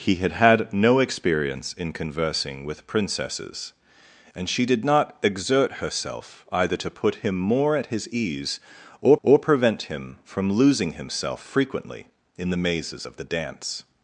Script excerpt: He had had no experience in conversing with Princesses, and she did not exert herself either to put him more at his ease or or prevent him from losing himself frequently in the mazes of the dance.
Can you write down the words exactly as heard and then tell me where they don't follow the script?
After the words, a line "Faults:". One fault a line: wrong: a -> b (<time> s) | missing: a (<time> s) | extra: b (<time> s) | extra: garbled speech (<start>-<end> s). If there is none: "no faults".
He had had no experience in conversing with Princesses, and she did not exert herself either to put him more at his ease or or prevent him from losing himself frequently in the mazes of the dance.
Faults:
no faults